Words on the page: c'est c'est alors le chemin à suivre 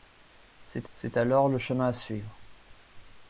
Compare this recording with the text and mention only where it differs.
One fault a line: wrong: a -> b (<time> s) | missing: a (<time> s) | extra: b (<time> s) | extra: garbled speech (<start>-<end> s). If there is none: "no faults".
no faults